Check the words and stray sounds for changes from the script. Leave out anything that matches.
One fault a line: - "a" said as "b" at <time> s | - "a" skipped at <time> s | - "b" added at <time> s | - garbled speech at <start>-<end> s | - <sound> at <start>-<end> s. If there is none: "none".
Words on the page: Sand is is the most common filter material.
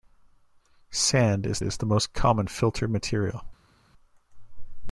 none